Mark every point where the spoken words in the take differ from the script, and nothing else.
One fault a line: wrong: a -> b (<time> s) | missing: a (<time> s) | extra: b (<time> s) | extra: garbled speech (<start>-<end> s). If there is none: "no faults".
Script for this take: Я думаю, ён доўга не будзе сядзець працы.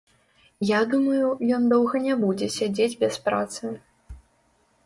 extra: без (3.0 s)